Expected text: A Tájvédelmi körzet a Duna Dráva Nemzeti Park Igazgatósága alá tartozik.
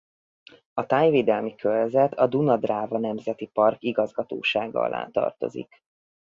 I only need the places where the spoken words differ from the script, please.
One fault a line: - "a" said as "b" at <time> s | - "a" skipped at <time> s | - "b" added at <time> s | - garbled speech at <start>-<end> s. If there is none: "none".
none